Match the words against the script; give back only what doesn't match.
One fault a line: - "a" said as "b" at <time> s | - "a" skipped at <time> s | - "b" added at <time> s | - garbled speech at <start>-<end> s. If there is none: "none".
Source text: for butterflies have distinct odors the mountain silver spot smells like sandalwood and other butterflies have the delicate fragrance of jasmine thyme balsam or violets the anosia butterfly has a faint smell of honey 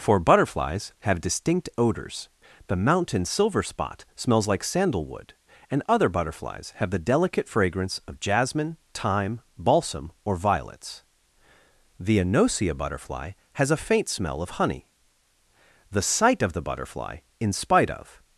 - "the sight of the butterfly in spite of" added at 15.9 s